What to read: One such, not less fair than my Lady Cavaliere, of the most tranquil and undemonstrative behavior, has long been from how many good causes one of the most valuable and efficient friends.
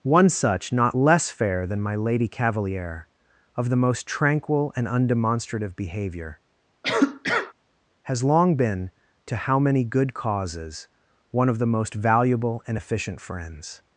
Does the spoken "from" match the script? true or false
false